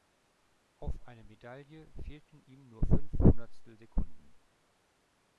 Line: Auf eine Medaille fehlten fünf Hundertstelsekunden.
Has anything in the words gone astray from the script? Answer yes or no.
yes